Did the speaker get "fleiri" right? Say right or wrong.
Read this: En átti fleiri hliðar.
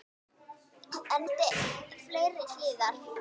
right